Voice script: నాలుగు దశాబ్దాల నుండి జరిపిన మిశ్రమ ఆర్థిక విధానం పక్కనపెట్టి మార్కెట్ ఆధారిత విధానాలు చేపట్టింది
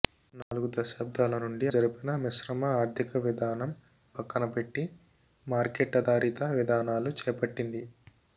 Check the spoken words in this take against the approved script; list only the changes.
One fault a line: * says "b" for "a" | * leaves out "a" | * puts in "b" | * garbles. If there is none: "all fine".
all fine